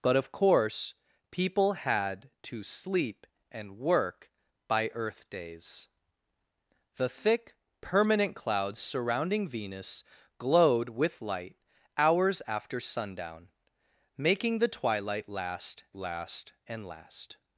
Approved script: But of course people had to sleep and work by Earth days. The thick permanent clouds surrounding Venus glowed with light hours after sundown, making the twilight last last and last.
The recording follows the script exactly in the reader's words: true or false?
true